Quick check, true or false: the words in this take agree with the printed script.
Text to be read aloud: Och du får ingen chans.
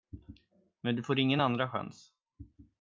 false